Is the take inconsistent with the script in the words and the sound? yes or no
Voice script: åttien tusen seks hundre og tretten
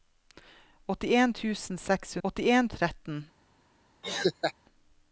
yes